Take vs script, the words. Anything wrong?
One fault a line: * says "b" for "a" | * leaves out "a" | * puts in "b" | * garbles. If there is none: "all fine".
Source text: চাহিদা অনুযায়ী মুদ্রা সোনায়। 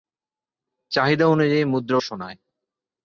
all fine